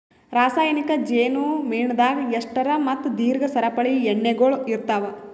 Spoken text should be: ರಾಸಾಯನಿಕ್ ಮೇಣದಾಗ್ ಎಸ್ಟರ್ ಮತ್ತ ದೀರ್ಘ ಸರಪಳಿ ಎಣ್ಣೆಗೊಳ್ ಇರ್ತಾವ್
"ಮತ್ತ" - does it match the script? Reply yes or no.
yes